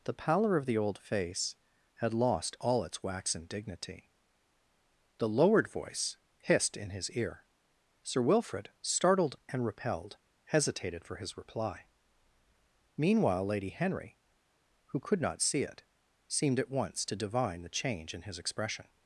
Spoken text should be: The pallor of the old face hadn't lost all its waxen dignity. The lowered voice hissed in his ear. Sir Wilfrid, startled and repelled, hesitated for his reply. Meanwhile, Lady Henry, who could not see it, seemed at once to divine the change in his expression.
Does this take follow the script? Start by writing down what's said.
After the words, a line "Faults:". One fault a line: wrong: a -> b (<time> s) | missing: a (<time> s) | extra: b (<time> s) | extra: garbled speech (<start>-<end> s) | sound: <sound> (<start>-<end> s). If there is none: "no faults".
The pallor of the old face had lost all its waxen dignity. The lowered voice hissed in his ear. Sir Wilfrid, startled and repelled, hesitated for his reply. Meanwhile, Lady Henry, who could not see it, seemed at once to divine the change in his expression.
Faults:
wrong: hadn't -> had (1.9 s)